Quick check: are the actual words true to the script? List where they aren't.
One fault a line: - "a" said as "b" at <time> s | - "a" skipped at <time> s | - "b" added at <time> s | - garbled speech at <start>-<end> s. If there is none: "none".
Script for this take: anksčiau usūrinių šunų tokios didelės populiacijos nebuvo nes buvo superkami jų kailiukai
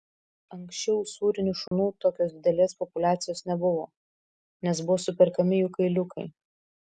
none